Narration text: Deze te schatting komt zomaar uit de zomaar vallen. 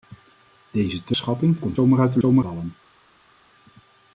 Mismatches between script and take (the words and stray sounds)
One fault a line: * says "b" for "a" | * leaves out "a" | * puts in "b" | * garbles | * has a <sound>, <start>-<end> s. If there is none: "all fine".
all fine